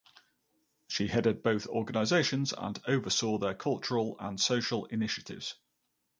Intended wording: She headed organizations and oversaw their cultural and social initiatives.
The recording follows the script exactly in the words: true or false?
false